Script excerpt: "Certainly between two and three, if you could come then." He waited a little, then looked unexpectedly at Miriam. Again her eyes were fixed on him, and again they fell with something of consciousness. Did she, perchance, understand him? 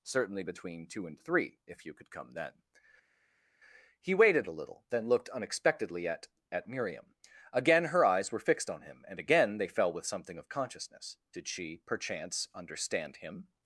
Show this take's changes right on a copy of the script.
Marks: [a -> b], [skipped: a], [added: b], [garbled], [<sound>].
"Certainly between two and three, if you could come then." He waited a little, then looked unexpectedly at [added: at] Miriam. Again her eyes were fixed on him, and again they fell with something of consciousness. Did she, perchance, understand him?